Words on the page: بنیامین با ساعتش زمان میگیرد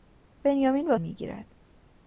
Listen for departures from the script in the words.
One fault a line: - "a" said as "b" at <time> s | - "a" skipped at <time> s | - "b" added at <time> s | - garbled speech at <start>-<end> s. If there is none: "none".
- "ساعتش زمان" skipped at 1.0 s